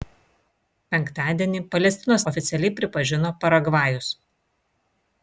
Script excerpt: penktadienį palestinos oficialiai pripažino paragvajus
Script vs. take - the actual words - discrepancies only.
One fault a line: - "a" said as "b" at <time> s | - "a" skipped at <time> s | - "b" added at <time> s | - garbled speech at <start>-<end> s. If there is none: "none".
none